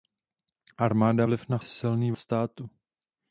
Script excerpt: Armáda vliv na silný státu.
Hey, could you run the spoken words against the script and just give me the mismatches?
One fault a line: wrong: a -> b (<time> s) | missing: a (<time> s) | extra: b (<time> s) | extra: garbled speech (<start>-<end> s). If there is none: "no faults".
no faults